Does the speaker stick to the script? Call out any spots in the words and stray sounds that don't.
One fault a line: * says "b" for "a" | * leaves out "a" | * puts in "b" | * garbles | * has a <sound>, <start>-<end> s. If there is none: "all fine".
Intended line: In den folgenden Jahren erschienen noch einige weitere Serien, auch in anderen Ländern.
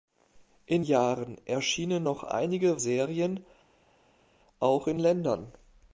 * leaves out "den folgenden"
* leaves out "weitere"
* leaves out "anderen"